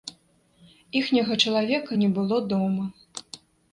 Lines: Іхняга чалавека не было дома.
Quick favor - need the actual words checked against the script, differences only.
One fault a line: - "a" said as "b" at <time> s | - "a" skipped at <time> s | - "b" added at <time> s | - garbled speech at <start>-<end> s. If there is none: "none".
none